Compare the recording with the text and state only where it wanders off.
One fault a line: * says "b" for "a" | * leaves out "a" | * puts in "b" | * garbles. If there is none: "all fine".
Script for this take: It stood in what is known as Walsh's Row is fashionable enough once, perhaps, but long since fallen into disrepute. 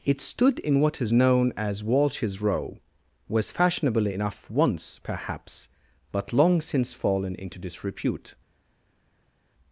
* says "was" for "is"